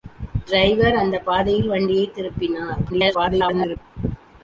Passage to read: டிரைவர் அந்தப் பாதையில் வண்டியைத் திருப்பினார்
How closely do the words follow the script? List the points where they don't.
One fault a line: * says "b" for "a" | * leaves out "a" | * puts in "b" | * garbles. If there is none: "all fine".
* garbles